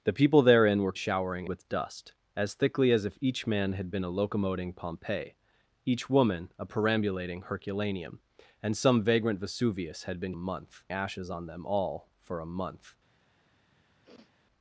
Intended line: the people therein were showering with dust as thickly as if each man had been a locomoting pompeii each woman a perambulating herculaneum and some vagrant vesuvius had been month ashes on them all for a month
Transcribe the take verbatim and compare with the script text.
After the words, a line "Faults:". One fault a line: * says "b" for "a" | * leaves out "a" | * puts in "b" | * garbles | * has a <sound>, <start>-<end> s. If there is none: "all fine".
the people therein were showering with dust as thickly as if each man had been a locomoting pompeii each woman a perambulating herculaneum and some vagrant vesuvius had been month ashes on them all for a month
Faults:
* has a sniff, 14.0-14.3 s